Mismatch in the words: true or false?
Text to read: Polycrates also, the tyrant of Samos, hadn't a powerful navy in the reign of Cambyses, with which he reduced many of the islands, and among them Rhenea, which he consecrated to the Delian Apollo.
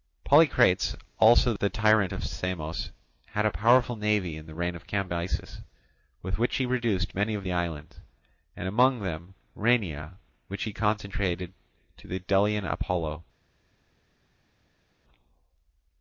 true